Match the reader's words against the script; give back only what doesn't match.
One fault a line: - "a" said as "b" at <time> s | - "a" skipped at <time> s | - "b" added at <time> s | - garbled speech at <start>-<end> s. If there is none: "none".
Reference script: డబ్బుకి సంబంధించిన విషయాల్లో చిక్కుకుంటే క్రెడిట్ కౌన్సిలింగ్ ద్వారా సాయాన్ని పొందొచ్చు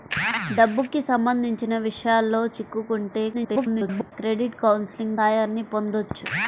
- garbled speech at 3.3-4.1 s
- "ద్వారా" skipped at 5.2 s